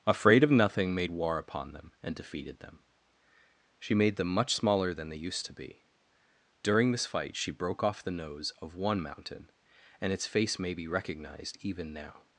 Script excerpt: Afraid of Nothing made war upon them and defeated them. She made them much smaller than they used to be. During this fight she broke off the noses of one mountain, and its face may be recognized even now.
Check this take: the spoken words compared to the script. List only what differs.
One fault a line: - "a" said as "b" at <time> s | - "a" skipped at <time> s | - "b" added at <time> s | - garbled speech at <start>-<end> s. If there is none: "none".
- "noses" said as "nose" at 8.1 s